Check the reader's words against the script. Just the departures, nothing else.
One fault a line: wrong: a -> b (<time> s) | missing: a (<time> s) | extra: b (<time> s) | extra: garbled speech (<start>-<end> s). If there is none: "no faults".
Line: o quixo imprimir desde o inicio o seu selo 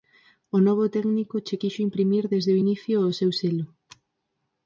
extra: novo técnico che (0.7 s)